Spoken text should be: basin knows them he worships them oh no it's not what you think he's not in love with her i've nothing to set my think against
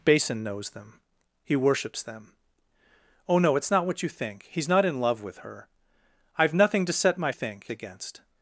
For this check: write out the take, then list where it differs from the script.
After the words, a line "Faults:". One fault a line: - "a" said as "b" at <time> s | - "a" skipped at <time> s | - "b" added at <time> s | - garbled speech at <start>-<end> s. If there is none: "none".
basin knows them he worships them oh no it's not what you think he's not in love with her i've nothing to set my think against
Faults:
none